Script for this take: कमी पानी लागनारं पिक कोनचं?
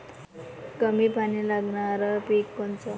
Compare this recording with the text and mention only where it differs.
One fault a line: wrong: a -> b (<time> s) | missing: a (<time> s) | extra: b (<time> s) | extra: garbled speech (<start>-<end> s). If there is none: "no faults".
no faults